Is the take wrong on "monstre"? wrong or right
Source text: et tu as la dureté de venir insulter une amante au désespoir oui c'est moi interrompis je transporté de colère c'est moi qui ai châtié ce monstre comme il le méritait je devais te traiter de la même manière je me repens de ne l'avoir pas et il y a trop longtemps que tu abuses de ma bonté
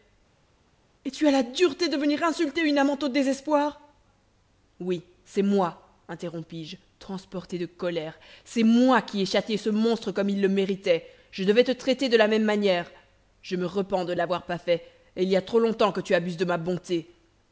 right